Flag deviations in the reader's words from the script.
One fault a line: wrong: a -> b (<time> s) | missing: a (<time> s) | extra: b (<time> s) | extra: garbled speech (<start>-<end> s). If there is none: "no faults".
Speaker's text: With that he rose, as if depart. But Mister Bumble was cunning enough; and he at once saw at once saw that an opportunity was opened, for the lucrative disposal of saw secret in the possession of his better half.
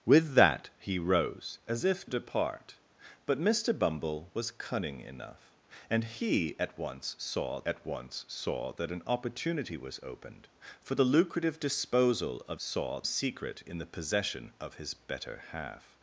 no faults